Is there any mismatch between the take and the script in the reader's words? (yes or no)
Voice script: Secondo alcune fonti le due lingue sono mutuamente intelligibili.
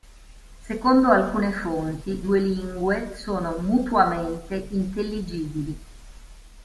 yes